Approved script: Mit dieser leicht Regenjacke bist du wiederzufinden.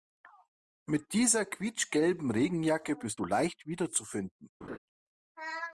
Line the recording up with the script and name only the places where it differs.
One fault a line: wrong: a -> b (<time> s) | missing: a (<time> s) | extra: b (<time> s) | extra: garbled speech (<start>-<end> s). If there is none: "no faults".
wrong: leicht -> quietschgelben (1.4 s)
extra: leicht (3.2 s)